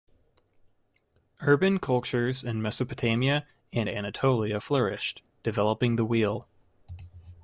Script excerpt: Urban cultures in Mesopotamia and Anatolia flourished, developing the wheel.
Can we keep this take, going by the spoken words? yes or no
yes